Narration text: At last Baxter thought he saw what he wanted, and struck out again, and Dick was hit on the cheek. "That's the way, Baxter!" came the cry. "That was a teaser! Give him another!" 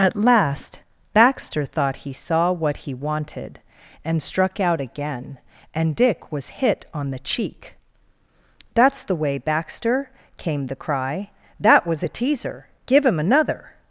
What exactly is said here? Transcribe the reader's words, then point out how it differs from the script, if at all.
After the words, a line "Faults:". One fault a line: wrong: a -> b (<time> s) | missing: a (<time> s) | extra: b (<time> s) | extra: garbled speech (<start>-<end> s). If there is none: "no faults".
At last Baxter thought he saw what he wanted, and struck out again, and Dick was hit on the cheek. "That's the way, Baxter!" came the cry. "That was a teaser! Give him another!"
Faults:
no faults